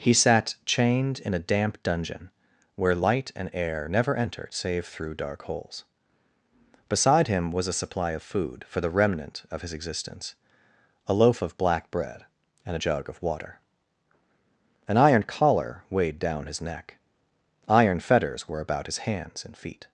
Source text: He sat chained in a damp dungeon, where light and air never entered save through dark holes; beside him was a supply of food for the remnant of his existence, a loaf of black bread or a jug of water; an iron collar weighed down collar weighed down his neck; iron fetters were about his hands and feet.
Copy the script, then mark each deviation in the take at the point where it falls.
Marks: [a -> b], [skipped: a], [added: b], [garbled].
He sat chained in a damp dungeon, where light and air never entered save through dark holes; beside him was a supply of food for the remnant of his existence, a loaf of black bread [or -> and] a jug of water; an iron collar weighed down [skipped: collar weighed down] his neck; iron fetters were about his hands and feet.